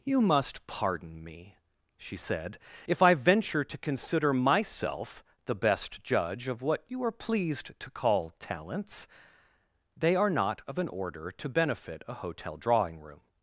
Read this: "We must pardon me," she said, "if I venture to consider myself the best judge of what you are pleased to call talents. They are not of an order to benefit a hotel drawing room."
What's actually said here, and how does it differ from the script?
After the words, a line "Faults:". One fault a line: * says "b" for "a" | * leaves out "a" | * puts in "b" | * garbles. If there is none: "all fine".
"You must pardon me," she said, "if I venture to consider myself the best judge of what you are pleased to call talents. They are not of an order to benefit a hotel drawing room."
Faults:
* says "You" for "We"